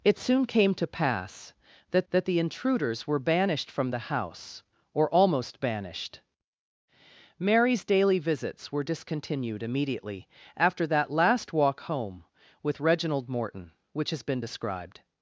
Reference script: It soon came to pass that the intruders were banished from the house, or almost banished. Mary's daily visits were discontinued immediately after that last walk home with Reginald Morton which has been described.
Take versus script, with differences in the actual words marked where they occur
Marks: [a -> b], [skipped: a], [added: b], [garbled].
It soon came to pass that [added: that] the intruders were banished from the house, or almost banished. Mary's daily visits were discontinued immediately after that last walk home with Reginald Morton which has been described.